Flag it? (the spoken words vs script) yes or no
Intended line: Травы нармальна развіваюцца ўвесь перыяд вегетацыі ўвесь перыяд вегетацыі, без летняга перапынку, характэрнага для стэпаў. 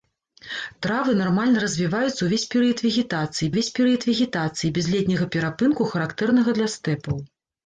no